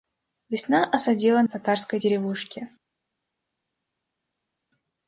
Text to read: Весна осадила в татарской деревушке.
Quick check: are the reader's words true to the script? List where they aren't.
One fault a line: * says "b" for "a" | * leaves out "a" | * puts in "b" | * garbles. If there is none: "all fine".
all fine